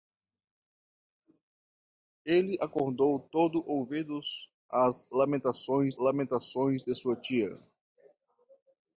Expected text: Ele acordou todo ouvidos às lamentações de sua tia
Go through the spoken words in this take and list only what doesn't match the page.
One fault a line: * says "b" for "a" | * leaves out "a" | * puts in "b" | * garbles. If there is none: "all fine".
* puts in "lamentações"